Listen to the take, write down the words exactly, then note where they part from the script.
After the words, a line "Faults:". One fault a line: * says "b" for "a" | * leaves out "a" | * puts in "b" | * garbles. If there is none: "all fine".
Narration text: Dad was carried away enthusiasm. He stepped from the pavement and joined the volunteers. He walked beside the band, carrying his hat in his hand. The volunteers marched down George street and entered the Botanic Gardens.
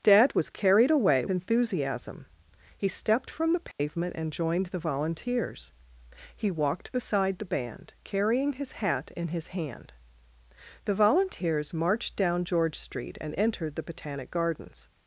Dad was carried away enthusiasm. He stepped from the pavement and joined the volunteers. He walked beside the band, carrying his hat in his hand. The volunteers marched down George street and entered the Botanic Gardens.
Faults:
all fine